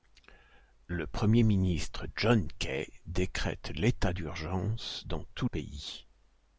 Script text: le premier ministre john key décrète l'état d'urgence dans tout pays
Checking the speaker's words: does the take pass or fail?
pass